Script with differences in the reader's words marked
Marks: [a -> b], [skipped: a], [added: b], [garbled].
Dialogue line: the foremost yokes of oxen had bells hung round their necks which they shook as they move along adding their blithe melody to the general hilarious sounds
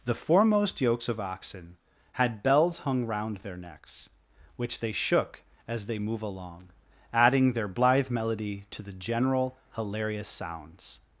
the foremost yokes of oxen had bells hung round their necks which they shook as they move along adding their blithe melody to the general hilarious sounds